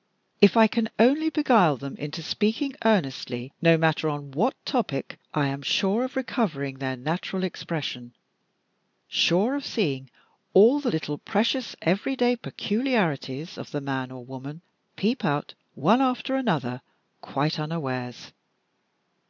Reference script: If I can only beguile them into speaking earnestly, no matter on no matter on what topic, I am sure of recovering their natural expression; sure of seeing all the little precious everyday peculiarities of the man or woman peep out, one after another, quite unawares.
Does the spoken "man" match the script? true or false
true